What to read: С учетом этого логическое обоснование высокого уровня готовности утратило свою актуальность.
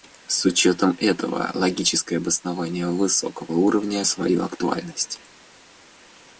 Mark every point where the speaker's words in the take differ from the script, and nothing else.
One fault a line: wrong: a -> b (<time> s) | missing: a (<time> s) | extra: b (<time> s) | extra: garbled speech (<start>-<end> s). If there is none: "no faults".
missing: готовности утратило (4.0 s)